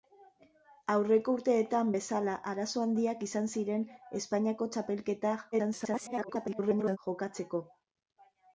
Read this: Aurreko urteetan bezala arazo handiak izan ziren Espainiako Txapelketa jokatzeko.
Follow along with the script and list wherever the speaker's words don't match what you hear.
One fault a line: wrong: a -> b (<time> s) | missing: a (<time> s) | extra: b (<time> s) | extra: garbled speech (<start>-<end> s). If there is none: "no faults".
extra: garbled speech (5.5-7.0 s)